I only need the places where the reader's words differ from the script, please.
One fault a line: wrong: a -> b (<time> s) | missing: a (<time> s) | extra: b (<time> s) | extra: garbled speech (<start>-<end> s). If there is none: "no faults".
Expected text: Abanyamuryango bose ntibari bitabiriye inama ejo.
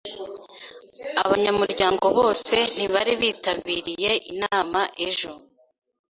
no faults